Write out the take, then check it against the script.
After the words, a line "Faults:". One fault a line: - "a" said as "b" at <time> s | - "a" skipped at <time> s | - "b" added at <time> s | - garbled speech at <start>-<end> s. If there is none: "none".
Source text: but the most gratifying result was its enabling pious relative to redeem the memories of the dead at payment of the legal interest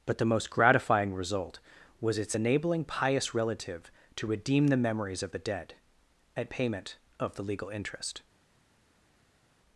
but the most gratifying result was its enabling pious relative to redeem the memories of the dead at payment of the legal interest
Faults:
none